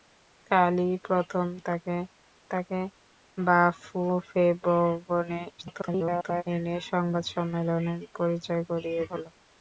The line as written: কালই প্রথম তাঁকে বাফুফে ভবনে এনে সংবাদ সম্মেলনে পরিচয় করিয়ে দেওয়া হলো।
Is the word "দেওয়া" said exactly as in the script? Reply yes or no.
no